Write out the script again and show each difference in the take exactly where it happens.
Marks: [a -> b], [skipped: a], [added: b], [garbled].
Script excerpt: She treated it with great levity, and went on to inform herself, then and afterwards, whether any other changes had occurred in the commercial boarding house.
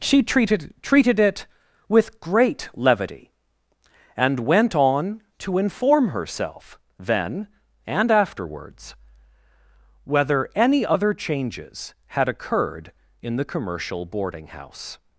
She treated [added: treated] it with great levity, and went on to inform herself, then and afterwards, whether any other changes had occurred in the commercial boarding house.